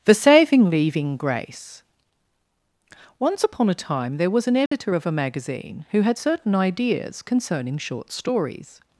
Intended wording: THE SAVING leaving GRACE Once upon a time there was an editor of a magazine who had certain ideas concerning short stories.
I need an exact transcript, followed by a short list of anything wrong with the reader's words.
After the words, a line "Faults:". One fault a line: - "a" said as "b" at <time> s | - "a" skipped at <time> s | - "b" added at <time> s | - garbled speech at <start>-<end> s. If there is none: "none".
THE SAVING leaving GRACE Once upon a time there was an editor of a magazine who had certain ideas concerning short stories.
Faults:
none